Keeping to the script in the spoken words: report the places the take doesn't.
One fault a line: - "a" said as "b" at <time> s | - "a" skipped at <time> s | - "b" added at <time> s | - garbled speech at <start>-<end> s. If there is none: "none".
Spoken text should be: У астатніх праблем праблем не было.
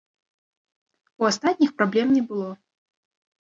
- "праблем" skipped at 2.1 s